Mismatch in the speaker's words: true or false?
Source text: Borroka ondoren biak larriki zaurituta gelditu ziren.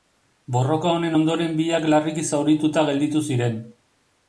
true